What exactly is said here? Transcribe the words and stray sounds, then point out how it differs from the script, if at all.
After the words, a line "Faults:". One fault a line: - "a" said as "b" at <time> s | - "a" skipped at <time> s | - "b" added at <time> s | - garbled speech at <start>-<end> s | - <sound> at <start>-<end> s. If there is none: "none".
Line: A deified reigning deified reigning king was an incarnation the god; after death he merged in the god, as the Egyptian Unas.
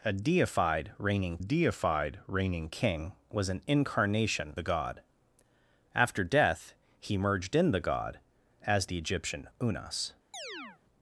A deified reigning deified reigning king was an incarnation the god; after death he merged in the god, as the Egyptian Unas.
Faults:
- chirp at 10.3-10.8 s